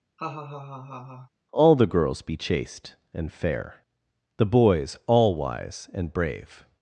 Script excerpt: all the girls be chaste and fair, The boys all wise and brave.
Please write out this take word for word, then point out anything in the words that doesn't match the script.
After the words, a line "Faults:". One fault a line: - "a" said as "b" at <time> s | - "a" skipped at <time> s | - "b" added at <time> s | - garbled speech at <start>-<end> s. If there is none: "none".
all the girls be chaste and fair, The boys all wise and brave.
Faults:
none